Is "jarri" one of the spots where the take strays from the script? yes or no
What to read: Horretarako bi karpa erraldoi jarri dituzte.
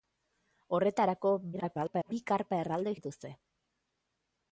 yes